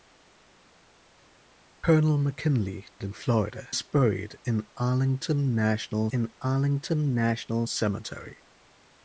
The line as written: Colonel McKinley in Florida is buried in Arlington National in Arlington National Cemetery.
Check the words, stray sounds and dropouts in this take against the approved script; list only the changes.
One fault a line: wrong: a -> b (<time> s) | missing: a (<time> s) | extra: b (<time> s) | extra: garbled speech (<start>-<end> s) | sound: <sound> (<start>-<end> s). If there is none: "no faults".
no faults